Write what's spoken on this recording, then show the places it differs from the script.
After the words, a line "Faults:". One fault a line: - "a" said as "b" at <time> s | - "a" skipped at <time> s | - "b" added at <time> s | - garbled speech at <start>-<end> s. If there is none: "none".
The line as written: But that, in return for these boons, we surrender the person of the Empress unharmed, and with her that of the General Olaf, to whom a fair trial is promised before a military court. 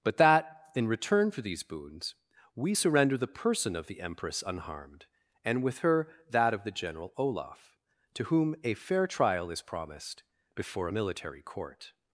But that, in return for these boons, we surrender the person of the Empress unharmed, and with her that of the General Olaf, to whom a fair trial is promised before a military court.
Faults:
none